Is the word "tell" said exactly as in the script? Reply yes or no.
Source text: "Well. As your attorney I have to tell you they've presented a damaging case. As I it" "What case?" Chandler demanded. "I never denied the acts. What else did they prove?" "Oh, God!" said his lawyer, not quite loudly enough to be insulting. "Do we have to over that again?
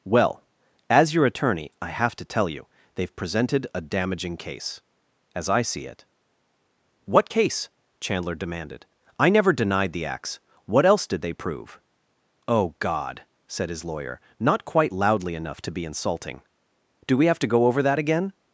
yes